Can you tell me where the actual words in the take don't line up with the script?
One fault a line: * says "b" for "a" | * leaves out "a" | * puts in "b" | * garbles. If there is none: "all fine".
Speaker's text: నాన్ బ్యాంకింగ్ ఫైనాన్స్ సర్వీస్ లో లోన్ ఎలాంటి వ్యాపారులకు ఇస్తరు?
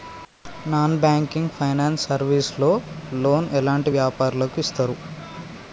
all fine